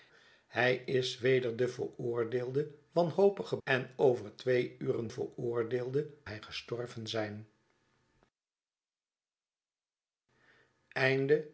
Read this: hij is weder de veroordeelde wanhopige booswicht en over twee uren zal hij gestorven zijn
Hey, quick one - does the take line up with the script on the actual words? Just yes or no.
no